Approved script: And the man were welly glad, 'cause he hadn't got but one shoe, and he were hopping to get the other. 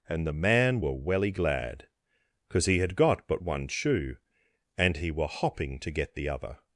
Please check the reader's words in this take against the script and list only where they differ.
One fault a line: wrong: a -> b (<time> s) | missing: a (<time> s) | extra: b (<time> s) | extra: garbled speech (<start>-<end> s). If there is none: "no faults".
wrong: hadn't -> had (2.8 s)